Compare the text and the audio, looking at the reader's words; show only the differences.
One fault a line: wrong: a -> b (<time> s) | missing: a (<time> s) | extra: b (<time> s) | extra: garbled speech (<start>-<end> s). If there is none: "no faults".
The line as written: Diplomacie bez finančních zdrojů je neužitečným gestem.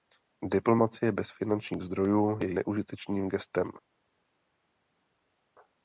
no faults